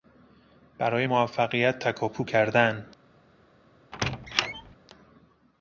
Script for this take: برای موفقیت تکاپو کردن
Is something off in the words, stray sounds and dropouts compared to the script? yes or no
yes